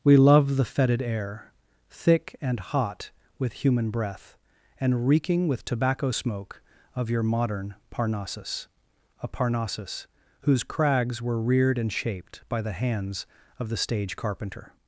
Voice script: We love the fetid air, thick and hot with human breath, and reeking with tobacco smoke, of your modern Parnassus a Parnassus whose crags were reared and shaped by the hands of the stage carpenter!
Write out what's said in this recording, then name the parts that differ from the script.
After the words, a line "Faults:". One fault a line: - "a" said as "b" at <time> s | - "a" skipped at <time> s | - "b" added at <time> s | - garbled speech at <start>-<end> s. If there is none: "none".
We love the fetid air, thick and hot with human breath, and reeking with tobacco smoke, of your modern Parnassus a Parnassus whose crags were reared and shaped by the hands of the stage carpenter!
Faults:
none